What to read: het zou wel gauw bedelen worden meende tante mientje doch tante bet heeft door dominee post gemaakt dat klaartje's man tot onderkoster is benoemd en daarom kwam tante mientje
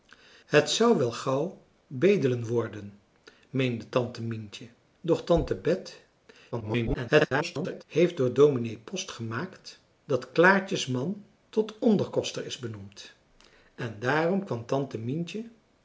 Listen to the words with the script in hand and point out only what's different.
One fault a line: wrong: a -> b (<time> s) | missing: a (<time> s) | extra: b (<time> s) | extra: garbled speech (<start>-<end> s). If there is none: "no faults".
extra: garbled speech (6.5-7.8 s)